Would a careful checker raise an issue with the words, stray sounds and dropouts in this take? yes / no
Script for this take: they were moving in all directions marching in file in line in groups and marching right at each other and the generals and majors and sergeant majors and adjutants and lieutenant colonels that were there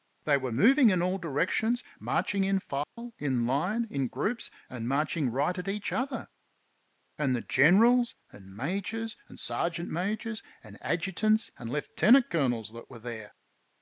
yes